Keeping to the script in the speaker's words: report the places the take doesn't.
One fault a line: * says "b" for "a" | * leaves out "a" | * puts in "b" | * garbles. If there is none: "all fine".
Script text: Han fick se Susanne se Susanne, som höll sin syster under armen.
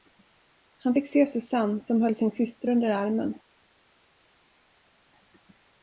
* leaves out "se Susanne"